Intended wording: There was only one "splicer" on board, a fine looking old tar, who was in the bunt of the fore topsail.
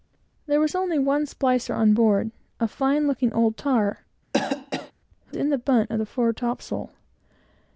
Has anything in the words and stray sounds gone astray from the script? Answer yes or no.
yes